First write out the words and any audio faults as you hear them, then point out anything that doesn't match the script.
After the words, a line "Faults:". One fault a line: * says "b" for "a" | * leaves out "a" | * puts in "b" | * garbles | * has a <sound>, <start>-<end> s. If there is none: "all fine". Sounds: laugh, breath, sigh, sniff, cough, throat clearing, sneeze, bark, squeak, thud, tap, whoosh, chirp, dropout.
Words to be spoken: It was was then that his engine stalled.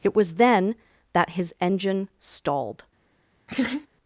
It was then that his engine stalled.
Faults:
* leaves out "was"
* has a laugh, 3.5-3.9 s